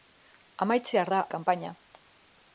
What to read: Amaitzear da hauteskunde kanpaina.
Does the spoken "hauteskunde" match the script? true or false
false